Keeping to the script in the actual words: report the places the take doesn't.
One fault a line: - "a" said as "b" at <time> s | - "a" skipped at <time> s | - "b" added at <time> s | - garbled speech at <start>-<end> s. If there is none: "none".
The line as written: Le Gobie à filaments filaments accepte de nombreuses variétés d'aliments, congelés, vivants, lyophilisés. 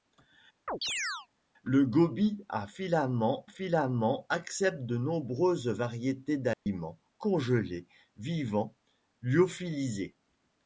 none